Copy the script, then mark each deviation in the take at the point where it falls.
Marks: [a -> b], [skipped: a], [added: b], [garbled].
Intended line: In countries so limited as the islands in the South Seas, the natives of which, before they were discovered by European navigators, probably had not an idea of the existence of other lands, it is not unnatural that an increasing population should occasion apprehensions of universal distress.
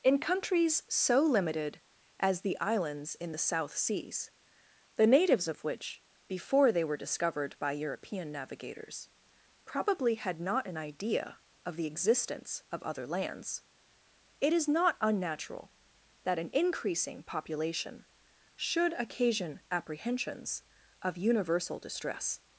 In countries so limited as the islands in the South Seas, the natives of which, before they were discovered by European navigators, probably had not an idea of the existence of other lands, it is not unnatural that an increasing population should occasion apprehensions of universal distress.